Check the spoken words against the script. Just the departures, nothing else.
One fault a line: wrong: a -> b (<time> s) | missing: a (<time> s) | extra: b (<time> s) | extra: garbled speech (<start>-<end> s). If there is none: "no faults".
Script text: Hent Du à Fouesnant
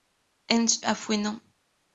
missing: Du (0.8 s)